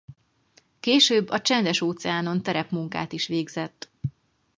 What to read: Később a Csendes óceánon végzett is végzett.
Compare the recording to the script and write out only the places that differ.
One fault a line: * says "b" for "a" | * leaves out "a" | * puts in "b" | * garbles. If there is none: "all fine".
* says "terepmunkát" for "végzett"